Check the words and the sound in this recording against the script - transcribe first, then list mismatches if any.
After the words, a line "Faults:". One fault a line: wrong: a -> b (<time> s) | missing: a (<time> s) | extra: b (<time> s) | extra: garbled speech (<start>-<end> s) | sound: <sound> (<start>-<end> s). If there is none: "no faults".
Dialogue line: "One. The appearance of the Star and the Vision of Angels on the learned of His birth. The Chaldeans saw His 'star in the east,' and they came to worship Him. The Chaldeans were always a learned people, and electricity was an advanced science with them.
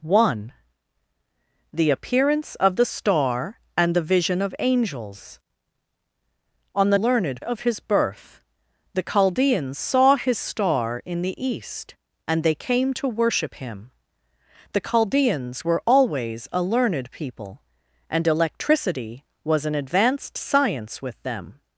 "One. The appearance of the Star and the Vision of Angels on the learned of His birth. The Chaldeans saw His 'star in the east,' and they came to worship Him. The Chaldeans were always a learned people, and electricity was an advanced science with them.
Faults:
no faults